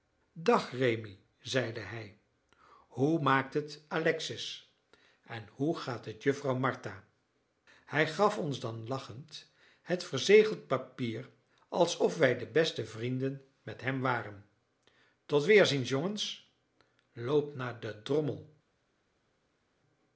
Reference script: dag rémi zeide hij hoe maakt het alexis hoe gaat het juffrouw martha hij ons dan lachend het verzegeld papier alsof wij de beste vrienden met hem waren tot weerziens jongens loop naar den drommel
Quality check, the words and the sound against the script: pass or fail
fail